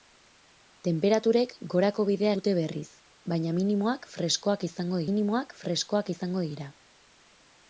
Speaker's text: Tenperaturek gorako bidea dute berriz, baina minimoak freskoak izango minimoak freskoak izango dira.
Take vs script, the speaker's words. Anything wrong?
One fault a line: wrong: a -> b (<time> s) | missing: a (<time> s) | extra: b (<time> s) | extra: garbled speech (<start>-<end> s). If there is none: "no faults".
no faults